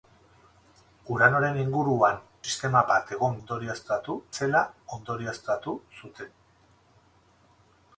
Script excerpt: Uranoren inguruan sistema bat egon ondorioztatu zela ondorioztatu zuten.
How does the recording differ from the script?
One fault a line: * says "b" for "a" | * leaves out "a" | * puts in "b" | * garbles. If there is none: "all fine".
all fine